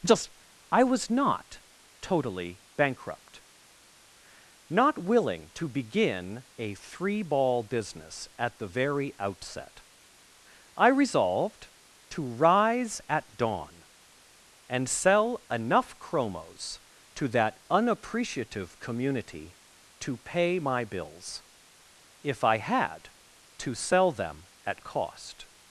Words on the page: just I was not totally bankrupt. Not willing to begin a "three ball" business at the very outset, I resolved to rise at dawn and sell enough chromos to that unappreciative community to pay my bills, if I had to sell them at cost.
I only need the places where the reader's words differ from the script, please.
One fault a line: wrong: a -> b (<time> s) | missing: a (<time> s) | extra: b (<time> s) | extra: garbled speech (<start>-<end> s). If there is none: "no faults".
no faults